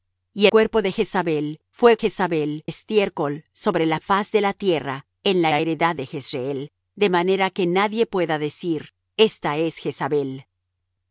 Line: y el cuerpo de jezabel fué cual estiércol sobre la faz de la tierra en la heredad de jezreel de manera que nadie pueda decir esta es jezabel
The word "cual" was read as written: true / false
false